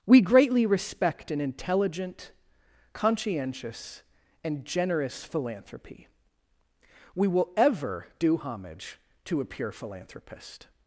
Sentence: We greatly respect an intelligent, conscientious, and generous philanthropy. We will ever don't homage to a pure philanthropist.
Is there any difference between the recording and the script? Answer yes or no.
yes